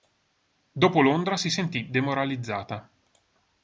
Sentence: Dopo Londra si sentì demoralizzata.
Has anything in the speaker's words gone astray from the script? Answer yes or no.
no